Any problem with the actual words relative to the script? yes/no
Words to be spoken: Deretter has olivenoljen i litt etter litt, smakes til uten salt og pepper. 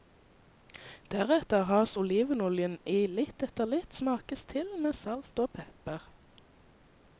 yes